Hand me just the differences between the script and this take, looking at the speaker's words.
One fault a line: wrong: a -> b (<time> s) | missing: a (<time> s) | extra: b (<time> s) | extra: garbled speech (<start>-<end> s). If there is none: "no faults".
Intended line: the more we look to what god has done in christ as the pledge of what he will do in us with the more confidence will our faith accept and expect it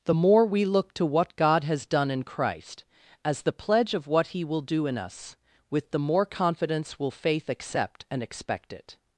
missing: our (7.1 s)